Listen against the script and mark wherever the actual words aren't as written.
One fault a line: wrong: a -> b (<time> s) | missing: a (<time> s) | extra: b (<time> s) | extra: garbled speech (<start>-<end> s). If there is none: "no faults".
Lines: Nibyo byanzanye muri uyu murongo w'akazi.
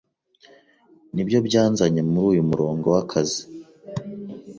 no faults